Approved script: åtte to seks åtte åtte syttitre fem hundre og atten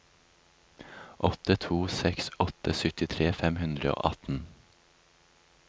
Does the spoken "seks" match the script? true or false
true